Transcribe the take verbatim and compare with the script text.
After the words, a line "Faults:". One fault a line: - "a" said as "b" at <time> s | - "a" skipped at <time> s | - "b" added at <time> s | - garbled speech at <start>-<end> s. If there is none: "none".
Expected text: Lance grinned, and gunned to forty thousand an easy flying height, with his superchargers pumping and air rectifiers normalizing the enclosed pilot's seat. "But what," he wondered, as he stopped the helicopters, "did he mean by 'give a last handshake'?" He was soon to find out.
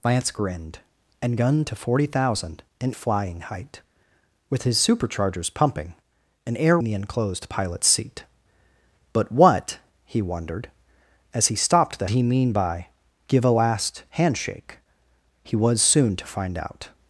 Lance grinned, and gunned to forty thousand an flying height, with his superchargers pumping and air the enclosed pilot's seat. "But what," he wondered, as he stopped the he mean by 'give a last handshake'?" He was soon to find out.
Faults:
- "easy" skipped at 2.9 s
- "rectifiers normalizing" skipped at 6.8 s
- "helicopters did" skipped at 12.1 s